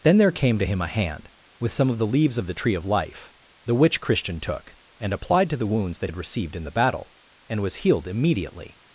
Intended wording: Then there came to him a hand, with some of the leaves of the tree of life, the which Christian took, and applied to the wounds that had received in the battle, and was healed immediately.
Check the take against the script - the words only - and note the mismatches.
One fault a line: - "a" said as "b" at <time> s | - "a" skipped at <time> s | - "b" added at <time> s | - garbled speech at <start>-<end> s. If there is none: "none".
none